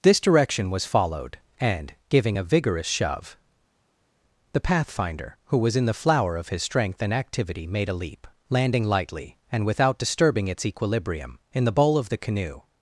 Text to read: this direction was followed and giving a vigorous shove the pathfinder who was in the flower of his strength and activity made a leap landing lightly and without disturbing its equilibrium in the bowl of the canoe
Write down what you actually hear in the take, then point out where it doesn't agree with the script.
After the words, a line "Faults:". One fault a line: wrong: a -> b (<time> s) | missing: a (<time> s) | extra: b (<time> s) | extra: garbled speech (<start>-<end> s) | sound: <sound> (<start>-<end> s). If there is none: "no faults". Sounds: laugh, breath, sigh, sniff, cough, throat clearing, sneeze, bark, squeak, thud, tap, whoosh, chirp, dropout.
this direction was followed and giving a vigorous shove the pathfinder who was in the flower of his strength and activity made a leap landing lightly and without disturbing its equilibrium in the bowl of the canoe
Faults:
no faults